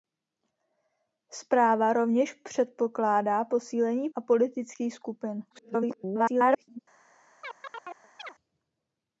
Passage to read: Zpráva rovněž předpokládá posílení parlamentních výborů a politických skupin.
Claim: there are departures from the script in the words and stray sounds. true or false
true